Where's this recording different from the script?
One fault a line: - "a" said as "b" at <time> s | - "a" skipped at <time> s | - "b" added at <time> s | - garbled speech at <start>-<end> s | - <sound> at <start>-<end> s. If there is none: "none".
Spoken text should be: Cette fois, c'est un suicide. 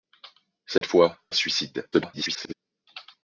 - dropout at 0.8-0.8 s
- "c'est" skipped at 1.2 s
- garbled speech at 1.9-2.5 s